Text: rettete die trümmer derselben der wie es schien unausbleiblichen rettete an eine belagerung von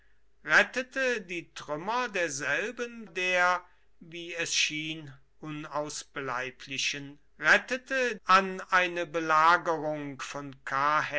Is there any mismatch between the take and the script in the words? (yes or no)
no